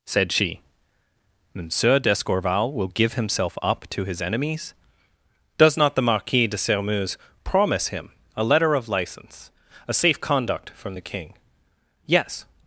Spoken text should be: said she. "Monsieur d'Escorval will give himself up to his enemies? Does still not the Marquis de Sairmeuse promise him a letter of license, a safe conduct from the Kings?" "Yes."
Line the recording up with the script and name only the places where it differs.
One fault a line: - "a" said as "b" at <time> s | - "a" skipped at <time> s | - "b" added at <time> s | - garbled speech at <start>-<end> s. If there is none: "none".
- "still" skipped at 5.8 s
- "Kings" said as "King" at 11.0 s